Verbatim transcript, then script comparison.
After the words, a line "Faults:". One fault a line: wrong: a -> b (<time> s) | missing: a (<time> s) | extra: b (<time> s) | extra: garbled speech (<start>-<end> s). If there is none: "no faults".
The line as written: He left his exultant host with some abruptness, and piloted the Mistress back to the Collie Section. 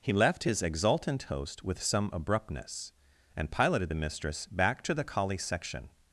He left his exultant host with some abruptness, and piloted the Mistress back to the Collie Section.
Faults:
no faults